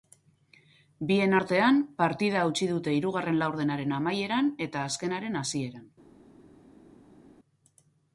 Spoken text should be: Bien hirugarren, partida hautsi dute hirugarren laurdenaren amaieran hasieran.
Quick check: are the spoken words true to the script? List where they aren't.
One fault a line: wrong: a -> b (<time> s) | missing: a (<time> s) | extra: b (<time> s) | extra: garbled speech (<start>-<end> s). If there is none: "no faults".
wrong: hirugarren -> artean (1.4 s)
extra: eta azkenaren (4.7 s)